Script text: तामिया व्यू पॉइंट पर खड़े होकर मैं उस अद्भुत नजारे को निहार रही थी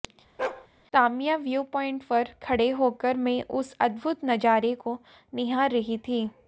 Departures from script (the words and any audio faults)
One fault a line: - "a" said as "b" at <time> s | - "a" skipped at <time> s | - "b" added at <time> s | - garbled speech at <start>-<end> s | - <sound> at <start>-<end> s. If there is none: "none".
- bark at 0.4-0.7 s